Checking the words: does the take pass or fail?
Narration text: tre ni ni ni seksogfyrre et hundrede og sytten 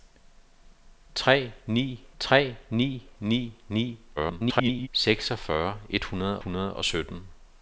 fail